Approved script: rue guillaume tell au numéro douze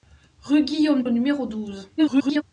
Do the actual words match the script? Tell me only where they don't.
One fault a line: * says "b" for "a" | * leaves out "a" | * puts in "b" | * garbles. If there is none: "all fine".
* leaves out "tell"
* garbles